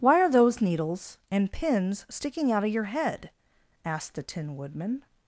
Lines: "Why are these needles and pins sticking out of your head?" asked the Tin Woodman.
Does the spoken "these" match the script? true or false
false